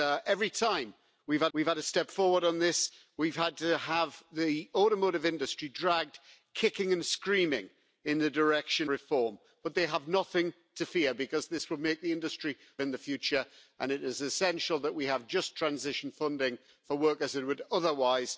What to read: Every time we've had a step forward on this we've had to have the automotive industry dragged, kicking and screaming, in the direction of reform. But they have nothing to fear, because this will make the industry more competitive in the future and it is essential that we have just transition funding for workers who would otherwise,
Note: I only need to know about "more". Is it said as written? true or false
false